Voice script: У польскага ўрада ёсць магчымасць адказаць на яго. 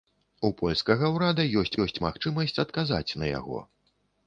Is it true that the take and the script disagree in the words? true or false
true